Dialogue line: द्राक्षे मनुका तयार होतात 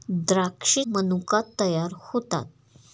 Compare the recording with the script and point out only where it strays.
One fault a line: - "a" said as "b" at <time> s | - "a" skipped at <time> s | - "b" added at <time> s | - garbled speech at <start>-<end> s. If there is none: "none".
none